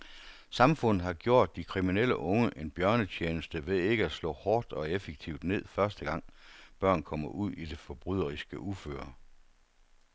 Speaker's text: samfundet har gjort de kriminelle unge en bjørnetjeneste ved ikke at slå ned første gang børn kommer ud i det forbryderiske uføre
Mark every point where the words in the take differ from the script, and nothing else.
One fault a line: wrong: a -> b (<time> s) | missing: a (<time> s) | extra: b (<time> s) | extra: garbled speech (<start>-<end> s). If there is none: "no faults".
extra: hårdt og effektivt (4.3 s)